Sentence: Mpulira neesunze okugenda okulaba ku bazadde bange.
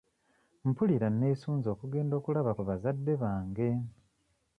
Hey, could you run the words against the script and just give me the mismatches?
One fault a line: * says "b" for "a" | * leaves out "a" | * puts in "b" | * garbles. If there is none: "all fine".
all fine